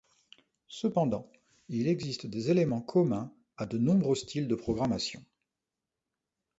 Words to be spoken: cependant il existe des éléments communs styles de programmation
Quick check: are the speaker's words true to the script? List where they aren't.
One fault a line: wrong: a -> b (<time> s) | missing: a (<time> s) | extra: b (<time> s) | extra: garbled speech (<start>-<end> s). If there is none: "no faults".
extra: à de nombreux (3.6 s)